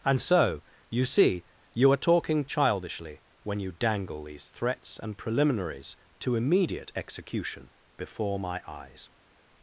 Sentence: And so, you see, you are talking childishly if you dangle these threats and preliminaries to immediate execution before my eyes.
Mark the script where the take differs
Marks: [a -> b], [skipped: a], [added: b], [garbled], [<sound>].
And so, you see, you are talking childishly [if -> when] you dangle these threats and preliminaries to immediate execution before my eyes.